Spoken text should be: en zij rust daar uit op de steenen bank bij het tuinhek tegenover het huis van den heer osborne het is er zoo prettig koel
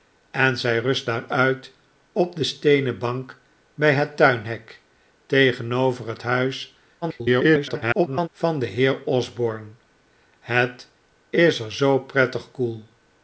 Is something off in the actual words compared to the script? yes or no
yes